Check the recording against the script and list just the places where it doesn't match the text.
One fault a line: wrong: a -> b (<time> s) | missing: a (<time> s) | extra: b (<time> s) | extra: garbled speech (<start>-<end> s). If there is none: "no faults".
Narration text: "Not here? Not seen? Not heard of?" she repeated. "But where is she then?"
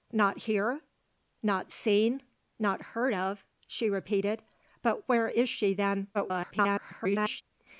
extra: garbled speech (6.1-7.4 s)